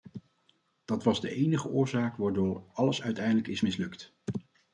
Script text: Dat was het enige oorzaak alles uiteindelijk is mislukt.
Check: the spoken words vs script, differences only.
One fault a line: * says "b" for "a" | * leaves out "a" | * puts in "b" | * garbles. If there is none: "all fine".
* says "de" for "het"
* puts in "waardoor"